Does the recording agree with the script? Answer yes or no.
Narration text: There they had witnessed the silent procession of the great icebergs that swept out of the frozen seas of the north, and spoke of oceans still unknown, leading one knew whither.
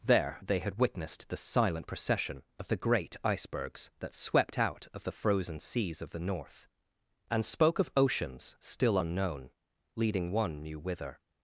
yes